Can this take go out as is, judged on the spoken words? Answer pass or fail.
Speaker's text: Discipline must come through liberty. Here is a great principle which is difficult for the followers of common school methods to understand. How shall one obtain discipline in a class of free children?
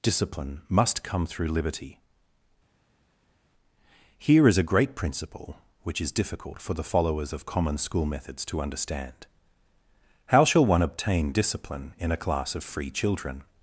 pass